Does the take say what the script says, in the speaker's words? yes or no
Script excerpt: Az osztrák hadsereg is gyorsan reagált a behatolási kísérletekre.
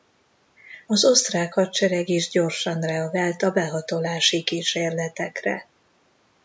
yes